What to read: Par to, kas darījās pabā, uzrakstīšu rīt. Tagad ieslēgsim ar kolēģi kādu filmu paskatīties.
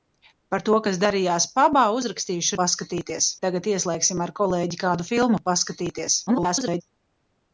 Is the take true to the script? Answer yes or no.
no